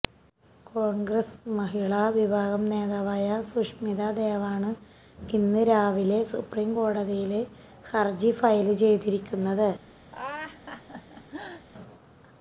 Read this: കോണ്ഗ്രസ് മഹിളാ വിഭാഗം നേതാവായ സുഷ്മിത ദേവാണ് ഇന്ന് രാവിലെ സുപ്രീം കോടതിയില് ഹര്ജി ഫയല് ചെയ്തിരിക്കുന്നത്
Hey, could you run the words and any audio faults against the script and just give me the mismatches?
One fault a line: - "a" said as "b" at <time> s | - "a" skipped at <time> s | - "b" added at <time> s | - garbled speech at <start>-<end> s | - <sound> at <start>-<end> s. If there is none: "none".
- laugh at 10.1-11.7 s